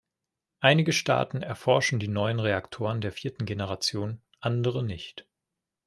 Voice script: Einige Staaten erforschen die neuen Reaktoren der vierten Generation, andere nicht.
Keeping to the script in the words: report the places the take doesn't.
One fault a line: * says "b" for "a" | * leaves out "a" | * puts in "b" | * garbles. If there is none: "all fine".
all fine